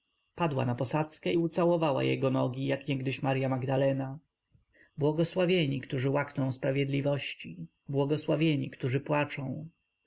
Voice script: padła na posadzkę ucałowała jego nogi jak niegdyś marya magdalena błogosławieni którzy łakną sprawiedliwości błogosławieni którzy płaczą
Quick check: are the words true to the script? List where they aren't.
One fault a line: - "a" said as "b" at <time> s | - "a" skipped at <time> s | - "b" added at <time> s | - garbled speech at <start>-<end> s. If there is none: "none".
none